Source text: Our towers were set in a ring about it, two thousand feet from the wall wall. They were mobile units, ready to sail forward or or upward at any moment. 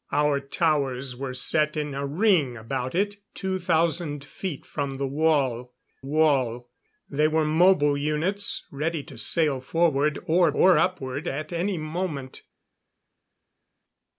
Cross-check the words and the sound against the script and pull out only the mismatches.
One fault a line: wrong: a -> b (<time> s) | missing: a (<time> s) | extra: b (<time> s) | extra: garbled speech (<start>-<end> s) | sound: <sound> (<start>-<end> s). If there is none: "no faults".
no faults